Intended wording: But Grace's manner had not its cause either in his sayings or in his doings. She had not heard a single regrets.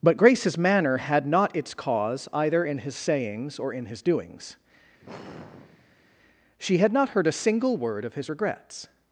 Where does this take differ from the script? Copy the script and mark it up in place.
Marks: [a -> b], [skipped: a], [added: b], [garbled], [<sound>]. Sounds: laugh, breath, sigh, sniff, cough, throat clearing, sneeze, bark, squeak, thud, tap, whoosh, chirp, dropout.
But Grace's manner had not its cause either in his sayings or in his doings. [sigh] She had not heard a single [added: word of his] regrets.